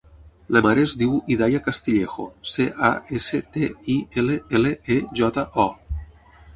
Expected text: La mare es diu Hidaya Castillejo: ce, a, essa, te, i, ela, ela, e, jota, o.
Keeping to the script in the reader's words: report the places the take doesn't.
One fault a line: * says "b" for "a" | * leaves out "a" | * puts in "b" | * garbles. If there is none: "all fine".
all fine